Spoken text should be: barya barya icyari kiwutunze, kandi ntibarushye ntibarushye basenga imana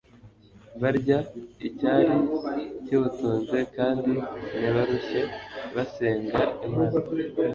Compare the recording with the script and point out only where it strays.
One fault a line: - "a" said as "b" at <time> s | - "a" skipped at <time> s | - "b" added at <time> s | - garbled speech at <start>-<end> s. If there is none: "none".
- "barya" skipped at 1.2 s
- "ntibarushye" skipped at 5.2 s